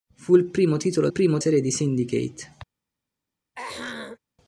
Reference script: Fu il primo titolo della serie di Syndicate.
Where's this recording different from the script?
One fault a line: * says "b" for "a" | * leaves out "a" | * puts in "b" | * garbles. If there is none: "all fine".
* says "primo" for "della"